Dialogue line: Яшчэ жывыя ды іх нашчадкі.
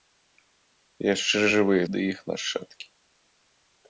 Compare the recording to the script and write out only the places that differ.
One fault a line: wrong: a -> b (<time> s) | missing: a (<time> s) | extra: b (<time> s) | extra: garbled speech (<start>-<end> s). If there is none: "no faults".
no faults